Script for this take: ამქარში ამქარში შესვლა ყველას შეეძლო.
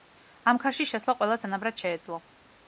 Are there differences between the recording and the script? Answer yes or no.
yes